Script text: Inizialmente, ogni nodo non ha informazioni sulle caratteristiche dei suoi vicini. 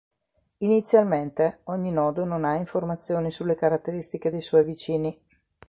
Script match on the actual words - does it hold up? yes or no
yes